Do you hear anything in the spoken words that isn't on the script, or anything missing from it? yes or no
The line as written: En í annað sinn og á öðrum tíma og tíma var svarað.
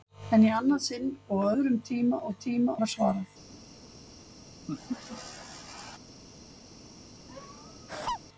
no